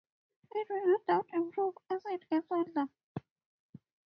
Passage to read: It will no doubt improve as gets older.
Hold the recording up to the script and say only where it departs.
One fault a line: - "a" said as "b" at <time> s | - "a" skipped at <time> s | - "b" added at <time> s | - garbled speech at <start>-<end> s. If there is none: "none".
- "it" added at 2.1 s